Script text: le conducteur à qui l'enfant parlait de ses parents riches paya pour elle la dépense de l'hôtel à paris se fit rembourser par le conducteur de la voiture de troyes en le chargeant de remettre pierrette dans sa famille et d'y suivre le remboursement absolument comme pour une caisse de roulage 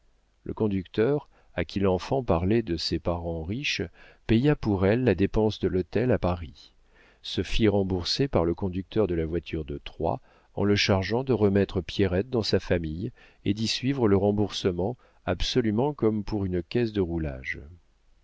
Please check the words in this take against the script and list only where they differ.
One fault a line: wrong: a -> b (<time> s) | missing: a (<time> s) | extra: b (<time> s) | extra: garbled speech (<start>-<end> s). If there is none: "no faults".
no faults